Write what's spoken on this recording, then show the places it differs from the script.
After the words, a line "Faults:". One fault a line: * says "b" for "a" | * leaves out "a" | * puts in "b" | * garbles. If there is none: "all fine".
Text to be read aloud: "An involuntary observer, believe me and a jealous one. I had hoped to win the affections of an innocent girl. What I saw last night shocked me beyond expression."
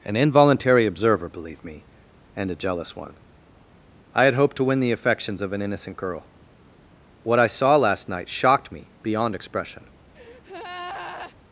"An involuntary observer, believe me and a jealous one. I had hoped to win the affections of an innocent girl. What I saw last night shocked me beyond expression."
Faults:
all fine